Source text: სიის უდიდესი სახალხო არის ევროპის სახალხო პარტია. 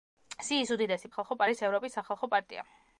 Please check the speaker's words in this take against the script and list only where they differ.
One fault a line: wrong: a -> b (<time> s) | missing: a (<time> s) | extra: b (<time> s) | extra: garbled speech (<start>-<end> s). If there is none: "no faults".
no faults